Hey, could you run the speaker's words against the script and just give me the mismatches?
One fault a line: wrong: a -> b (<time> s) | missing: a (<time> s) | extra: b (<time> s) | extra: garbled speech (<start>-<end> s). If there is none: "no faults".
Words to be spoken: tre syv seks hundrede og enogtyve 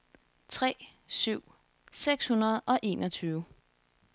no faults